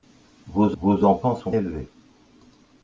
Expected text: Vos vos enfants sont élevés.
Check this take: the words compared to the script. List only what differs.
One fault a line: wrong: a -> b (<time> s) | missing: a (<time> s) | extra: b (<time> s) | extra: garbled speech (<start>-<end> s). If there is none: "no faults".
no faults